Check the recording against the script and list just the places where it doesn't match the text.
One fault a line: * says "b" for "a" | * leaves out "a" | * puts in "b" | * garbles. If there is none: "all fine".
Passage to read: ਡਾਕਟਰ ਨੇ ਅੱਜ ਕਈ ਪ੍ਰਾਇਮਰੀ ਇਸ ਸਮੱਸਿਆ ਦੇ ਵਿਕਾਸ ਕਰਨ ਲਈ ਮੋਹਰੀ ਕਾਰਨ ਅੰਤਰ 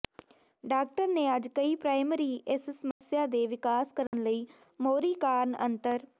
all fine